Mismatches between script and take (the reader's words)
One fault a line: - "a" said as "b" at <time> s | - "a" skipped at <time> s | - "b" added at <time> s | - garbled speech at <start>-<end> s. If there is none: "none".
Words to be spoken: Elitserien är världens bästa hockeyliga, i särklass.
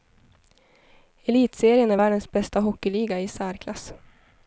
none